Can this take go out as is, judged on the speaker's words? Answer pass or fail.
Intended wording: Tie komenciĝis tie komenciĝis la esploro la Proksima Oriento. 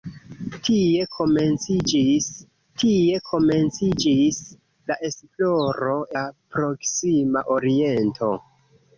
pass